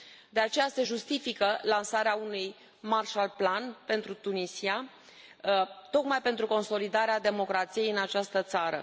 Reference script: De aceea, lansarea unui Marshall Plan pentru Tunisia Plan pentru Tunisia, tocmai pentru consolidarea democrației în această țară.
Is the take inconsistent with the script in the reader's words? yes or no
yes